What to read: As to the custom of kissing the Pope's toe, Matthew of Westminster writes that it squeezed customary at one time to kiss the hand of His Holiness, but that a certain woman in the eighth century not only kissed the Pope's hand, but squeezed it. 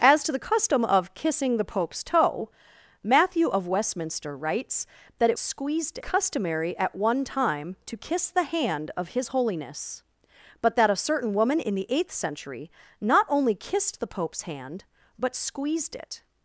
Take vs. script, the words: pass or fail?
pass